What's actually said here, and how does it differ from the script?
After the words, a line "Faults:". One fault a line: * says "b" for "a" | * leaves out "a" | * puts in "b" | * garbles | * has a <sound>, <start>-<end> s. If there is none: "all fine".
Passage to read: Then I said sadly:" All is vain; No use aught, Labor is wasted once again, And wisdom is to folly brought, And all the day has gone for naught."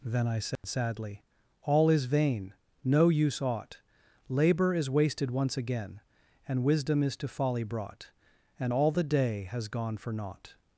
Then I said sadly:" All is vain; No use aught, Labor is wasted once again, And wisdom is to folly brought, And all the day has gone for naught."
Faults:
* has a dropout, 0.6-0.6 s